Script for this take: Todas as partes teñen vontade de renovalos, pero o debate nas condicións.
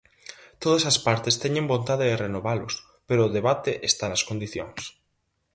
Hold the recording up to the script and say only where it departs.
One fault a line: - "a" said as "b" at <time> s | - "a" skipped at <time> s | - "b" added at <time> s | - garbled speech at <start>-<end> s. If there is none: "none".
- "está" added at 3.9 s